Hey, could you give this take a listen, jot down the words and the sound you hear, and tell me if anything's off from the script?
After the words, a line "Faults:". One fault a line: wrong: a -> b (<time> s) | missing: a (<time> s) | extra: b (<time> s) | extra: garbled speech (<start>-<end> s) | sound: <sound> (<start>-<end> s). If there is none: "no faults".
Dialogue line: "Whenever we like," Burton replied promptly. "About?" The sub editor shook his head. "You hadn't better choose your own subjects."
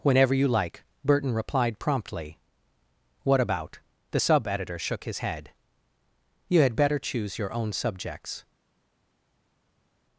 "Whenever you like," Burton replied promptly. "What about?" The sub editor shook his head. "You had better choose your own subjects."
Faults:
wrong: we -> you (0.3 s)
extra: What (3.2 s)
wrong: hadn't -> had (6.6 s)